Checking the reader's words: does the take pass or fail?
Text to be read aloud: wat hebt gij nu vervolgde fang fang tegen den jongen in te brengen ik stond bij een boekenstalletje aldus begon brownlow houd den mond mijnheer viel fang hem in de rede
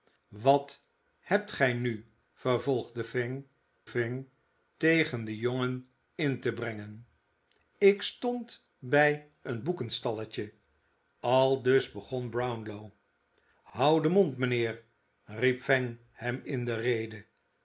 pass